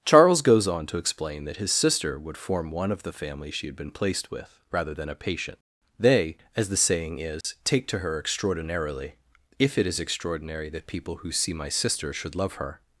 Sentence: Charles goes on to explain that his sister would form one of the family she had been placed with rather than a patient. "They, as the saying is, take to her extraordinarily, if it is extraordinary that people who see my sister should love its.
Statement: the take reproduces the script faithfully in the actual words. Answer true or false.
false